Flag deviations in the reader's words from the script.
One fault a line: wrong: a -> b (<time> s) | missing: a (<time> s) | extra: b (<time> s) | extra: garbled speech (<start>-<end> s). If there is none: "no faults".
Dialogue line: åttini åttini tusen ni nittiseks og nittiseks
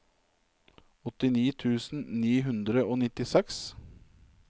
missing: åttini (1.4 s)
wrong: nittiseks -> hundre (2.5 s)